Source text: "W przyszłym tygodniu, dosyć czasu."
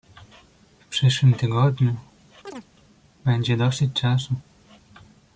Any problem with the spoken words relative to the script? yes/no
yes